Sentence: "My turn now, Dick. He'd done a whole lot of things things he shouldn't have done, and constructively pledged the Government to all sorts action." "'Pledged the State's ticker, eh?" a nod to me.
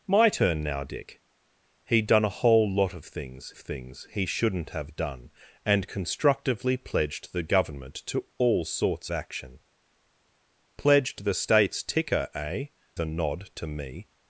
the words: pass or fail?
pass